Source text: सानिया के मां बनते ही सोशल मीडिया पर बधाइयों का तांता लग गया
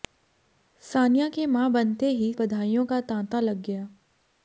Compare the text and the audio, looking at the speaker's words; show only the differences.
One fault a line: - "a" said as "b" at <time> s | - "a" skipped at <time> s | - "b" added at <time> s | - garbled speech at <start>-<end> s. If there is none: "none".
- "सोशल मीडिया पर" skipped at 2.3 s